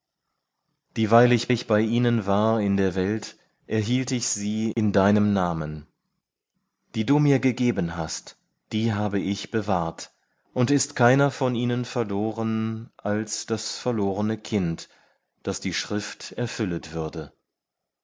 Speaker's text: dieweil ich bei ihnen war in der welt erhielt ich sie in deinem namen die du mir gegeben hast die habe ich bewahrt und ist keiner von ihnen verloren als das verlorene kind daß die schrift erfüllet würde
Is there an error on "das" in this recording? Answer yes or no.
no